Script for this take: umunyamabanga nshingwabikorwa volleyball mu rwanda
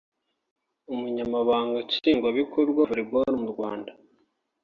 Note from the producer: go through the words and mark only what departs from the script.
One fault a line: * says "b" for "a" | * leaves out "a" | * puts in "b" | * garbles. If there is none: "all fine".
all fine